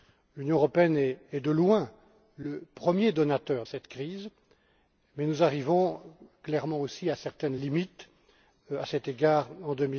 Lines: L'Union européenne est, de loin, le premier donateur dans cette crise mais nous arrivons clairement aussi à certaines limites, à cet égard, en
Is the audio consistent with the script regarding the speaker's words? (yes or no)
no